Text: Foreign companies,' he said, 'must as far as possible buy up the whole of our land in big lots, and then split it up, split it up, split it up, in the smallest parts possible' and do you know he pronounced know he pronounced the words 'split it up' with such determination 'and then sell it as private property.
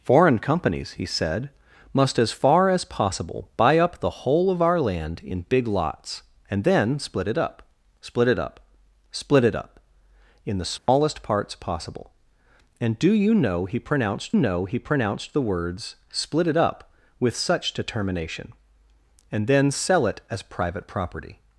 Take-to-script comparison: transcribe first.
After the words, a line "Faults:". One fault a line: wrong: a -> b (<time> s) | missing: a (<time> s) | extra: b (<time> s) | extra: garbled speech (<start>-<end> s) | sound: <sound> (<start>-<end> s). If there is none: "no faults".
Foreign companies,' he said, 'must as far as possible buy up the whole of our land in big lots, and then split it up, split it up, split it up, in the smallest parts possible' and do you know he pronounced know he pronounced the words 'split it up' with such determination 'and then sell it as private property.
Faults:
sound: dropout (10.8-10.9 s)